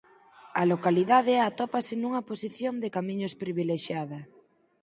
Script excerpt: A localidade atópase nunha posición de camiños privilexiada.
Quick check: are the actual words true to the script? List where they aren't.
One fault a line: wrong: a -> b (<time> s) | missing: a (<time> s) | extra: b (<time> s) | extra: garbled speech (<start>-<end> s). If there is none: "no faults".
no faults